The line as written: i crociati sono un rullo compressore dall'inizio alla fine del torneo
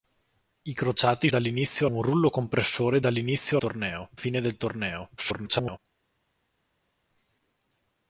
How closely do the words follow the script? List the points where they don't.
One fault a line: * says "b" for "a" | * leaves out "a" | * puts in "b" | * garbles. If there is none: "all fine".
* says "dall'inizio" for "sono"
* says "torneo" for "alla"
* garbles